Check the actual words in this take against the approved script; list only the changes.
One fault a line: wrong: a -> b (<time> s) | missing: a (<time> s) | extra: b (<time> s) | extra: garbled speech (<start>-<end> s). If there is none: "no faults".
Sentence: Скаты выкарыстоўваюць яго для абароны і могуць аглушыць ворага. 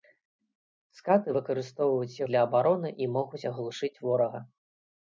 missing: яго (2.2 s)